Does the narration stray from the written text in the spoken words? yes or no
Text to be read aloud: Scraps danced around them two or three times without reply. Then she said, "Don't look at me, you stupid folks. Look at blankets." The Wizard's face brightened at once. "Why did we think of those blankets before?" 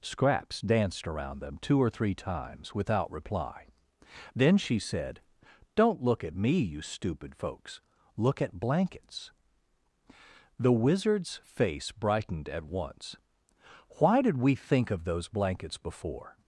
no